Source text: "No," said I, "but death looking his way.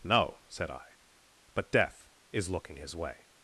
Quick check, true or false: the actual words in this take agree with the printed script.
false